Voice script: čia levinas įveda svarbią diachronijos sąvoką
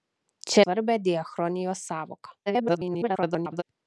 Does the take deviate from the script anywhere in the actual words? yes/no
yes